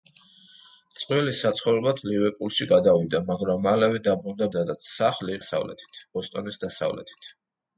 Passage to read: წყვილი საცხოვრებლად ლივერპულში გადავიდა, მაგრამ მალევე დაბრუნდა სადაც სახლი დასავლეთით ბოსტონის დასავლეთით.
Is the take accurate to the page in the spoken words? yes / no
yes